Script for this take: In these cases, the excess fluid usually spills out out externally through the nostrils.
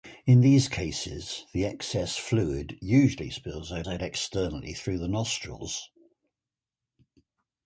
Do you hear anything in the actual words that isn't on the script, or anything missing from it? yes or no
no